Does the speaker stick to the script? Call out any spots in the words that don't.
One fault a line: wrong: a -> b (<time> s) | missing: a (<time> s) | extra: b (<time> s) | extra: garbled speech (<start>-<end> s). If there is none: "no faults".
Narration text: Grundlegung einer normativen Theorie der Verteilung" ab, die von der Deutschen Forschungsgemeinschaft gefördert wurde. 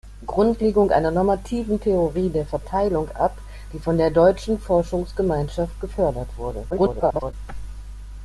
extra: garbled speech (6.7-7.3 s)